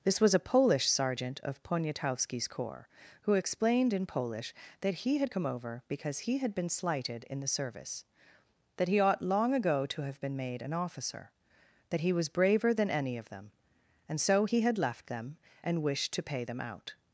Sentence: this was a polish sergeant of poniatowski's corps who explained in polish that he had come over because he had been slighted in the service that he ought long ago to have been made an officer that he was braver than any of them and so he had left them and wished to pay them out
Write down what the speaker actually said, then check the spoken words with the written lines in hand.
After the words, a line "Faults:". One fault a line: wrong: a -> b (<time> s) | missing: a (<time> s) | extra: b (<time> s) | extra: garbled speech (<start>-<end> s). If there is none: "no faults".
this was a polish sergeant of poniatowski's corps who explained in polish that he had come over because he had been slighted in the service that he ought long ago to have been made an officer that he was braver than any of them and so he had left them and wished to pay them out
Faults:
no faults